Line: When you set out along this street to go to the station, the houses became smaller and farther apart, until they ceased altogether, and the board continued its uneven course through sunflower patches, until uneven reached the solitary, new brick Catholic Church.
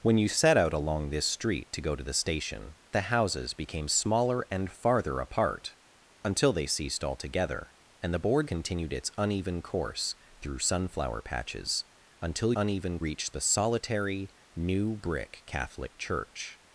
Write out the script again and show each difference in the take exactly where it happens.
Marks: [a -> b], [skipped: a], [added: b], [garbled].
When you set out along this street to go to the station, the houses became smaller and farther apart, until they ceased altogether, and the board continued its uneven course through sunflower patches, until uneven reached the solitary, new brick Catholic Church.